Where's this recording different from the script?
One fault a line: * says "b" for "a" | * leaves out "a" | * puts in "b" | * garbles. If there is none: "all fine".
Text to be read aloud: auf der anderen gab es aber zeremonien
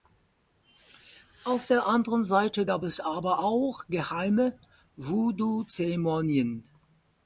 * puts in "seite"
* puts in "auch geheime voodoo"